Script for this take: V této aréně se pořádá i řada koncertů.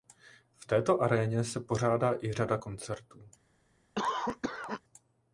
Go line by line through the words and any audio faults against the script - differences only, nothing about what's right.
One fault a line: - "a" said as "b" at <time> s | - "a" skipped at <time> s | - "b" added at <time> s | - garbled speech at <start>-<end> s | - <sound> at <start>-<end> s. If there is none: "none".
- cough at 4.0-4.8 s